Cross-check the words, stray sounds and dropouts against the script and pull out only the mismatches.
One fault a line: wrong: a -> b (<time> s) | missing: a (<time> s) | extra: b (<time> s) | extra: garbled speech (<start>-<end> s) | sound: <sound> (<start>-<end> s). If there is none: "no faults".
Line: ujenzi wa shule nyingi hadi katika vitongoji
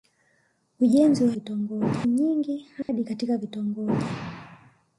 wrong: shule -> vitongoji (1.3 s)
sound: dropout (2.8-2.9 s)